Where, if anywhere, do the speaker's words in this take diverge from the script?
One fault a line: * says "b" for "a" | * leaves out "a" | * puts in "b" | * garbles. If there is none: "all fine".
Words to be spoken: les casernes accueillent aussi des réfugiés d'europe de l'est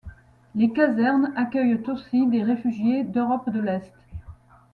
all fine